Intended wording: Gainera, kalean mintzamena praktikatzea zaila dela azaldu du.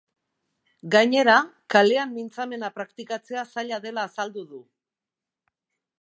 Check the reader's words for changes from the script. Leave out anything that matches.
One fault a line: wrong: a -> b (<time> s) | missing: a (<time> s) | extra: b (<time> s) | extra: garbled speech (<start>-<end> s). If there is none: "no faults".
no faults